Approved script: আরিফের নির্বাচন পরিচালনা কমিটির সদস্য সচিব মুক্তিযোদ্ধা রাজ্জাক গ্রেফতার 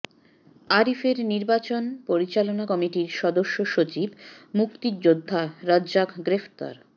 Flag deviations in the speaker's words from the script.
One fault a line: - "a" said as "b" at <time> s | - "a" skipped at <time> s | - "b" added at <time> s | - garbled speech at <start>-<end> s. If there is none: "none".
none